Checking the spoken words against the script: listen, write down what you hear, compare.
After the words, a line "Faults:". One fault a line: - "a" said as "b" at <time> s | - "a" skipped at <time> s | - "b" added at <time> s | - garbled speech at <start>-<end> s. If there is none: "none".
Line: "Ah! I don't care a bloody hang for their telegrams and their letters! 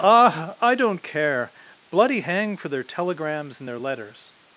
"Ah! I don't care bloody hang for their telegrams and their letters!
Faults:
- "a" skipped at 1.5 s